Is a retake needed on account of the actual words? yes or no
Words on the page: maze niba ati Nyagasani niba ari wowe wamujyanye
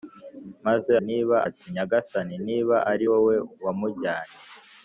no